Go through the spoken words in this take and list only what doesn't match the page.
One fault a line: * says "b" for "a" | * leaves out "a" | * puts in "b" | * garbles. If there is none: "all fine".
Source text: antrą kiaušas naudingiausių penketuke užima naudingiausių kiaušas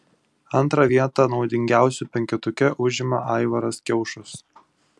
* says "vietą" for "kiaušas"
* says "aivaras" for "naudingiausių"